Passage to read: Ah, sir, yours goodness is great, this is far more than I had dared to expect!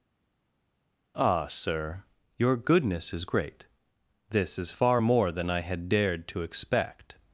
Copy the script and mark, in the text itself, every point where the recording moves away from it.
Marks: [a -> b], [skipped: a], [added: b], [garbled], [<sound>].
Ah, sir, [yours -> your] goodness is great, this is far more than I had dared to expect!